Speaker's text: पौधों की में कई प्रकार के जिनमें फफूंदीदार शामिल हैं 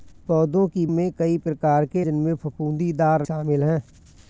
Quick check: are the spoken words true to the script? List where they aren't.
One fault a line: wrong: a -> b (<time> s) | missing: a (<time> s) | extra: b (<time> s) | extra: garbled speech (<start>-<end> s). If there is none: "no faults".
no faults